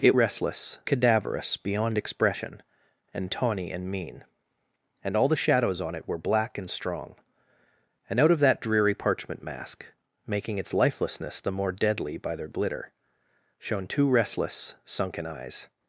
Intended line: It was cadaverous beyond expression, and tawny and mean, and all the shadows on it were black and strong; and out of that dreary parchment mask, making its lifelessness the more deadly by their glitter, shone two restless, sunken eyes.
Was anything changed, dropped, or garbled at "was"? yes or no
yes